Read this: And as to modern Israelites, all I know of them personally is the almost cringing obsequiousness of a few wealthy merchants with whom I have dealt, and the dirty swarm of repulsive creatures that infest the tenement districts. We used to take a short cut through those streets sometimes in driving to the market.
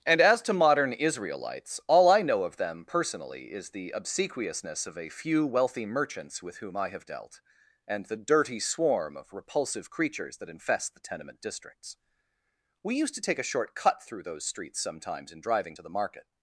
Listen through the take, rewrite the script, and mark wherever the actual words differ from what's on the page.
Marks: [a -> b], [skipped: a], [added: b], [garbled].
And as to modern Israelites, all I know of them personally is the [skipped: almost cringing] obsequiousness of a few wealthy merchants with whom I have dealt, and the dirty swarm of repulsive creatures that infest the tenement districts. We used to take a short cut through those streets sometimes in driving to the market.